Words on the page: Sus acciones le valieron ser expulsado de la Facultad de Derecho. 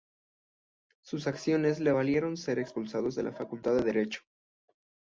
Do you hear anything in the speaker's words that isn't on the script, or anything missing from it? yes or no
no